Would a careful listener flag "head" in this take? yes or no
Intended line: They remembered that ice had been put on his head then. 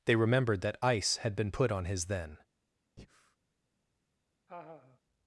yes